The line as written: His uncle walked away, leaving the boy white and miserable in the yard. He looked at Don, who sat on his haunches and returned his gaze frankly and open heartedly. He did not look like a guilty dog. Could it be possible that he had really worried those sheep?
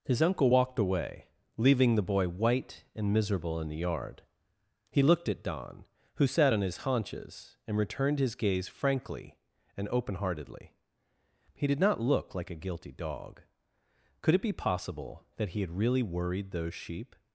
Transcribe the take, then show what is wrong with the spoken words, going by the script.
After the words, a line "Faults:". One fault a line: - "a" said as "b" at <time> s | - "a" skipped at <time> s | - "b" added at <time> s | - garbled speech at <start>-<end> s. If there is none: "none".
His uncle walked away, leaving the boy white and miserable in the yard. He looked at Don, who sat on his haunches and returned his gaze frankly and open heartedly. He did not look like a guilty dog. Could it be possible that he had really worried those sheep?
Faults:
none